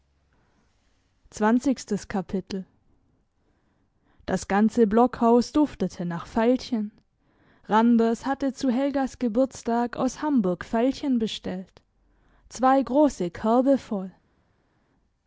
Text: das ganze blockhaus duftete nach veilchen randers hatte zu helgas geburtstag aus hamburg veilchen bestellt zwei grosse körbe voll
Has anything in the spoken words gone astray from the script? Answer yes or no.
no